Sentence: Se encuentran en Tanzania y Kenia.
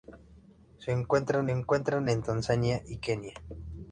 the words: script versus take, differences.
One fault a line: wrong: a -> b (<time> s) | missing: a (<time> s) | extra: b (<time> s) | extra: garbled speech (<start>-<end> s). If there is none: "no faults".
extra: encuentran (1.5 s)